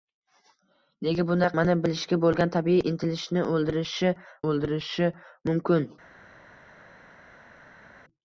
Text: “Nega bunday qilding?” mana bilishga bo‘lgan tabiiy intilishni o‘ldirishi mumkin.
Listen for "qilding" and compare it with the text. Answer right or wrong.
wrong